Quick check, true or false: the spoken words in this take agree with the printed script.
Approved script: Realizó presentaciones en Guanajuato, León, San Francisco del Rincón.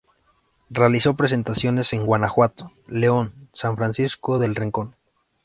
true